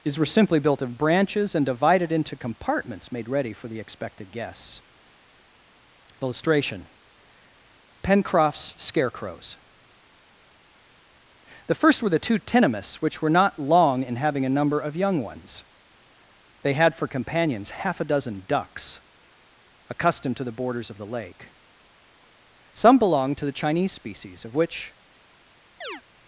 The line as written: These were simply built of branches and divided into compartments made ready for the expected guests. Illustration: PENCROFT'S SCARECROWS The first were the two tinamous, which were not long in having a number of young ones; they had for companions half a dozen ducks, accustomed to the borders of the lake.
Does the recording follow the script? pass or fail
fail